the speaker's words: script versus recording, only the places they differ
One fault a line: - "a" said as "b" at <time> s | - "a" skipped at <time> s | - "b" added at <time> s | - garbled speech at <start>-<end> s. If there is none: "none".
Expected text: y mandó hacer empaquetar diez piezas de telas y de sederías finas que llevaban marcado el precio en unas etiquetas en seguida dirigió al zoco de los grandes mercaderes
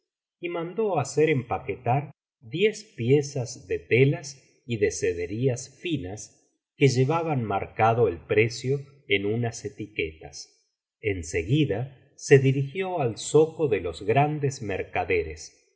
- "se" added at 12.2 s